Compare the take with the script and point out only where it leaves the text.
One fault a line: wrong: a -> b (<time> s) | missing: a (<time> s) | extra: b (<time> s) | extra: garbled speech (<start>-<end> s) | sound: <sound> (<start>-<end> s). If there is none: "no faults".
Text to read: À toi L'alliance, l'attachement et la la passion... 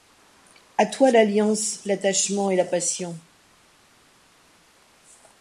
missing: la (2.6 s)